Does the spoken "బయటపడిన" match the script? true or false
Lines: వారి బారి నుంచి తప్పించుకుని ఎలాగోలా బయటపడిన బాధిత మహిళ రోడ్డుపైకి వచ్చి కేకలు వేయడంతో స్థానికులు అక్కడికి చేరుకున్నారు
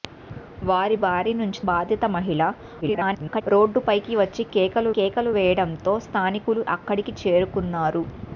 false